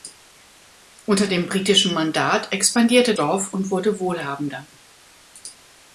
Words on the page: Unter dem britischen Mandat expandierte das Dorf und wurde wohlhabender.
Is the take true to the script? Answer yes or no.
no